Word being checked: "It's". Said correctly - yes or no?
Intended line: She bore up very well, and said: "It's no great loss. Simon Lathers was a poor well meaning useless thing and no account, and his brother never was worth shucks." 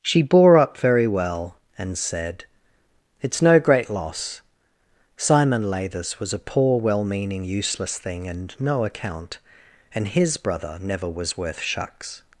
yes